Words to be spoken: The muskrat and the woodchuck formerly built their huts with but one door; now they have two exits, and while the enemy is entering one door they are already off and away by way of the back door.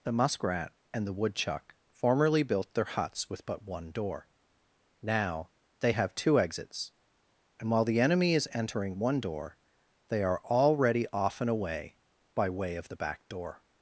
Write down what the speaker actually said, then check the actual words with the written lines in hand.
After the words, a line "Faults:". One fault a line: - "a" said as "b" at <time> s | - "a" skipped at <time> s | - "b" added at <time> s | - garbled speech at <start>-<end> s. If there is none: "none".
The muskrat and the woodchuck formerly built their huts with but one door; now they have two exits, and while the enemy is entering one door they are already off and away by way of the back door.
Faults:
none